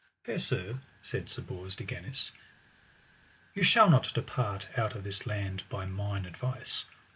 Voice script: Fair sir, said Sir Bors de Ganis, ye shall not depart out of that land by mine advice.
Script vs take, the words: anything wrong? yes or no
yes